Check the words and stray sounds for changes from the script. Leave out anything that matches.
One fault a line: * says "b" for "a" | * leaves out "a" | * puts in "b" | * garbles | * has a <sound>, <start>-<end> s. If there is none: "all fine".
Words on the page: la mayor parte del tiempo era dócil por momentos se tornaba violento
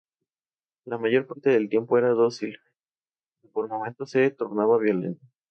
* puts in "pero"